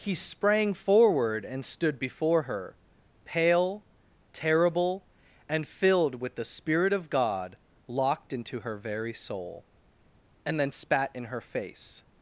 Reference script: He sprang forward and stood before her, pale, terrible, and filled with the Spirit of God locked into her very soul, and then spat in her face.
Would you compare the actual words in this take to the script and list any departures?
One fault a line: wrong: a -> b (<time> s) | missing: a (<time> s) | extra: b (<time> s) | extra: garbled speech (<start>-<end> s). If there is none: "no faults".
no faults